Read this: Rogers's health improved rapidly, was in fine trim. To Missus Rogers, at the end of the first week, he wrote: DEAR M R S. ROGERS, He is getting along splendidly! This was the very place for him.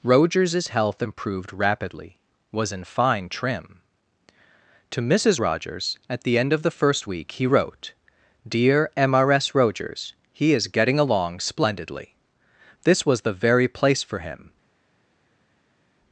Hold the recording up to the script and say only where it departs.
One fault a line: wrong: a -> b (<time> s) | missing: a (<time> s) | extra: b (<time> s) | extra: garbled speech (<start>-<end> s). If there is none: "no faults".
no faults